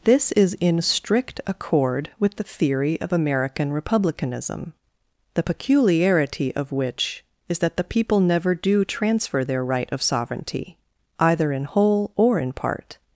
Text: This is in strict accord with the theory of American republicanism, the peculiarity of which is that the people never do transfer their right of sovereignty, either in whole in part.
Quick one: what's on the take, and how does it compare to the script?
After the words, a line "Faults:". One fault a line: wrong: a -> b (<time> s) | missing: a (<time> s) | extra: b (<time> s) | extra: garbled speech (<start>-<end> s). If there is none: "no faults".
This is in strict accord with the theory of American republicanism, the peculiarity of which is that the people never do transfer their right of sovereignty, either in whole or in part.
Faults:
extra: or (12.1 s)